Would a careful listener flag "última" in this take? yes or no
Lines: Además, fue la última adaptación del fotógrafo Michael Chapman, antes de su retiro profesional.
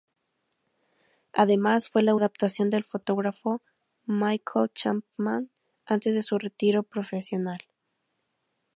yes